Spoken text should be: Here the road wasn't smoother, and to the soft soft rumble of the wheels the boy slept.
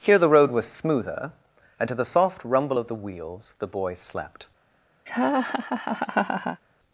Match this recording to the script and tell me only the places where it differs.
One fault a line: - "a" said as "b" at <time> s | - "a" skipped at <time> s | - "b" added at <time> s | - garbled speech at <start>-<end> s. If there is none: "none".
- "wasn't" said as "was" at 0.5 s
- "soft" skipped at 2.4 s